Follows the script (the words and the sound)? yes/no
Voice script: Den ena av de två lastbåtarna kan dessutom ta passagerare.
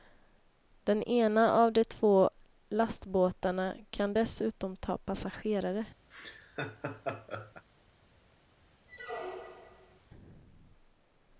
no